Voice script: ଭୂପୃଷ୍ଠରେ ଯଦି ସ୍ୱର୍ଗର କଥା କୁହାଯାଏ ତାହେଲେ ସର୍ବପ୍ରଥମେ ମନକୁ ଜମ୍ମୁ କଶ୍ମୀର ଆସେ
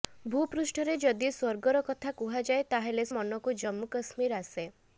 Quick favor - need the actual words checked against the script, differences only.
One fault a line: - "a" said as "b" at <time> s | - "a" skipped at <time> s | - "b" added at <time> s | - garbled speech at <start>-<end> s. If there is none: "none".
- "ସର୍ବପ୍ରଥମେ" skipped at 3.0 s